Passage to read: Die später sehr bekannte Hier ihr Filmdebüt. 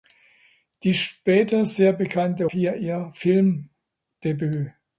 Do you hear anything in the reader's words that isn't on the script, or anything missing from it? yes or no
no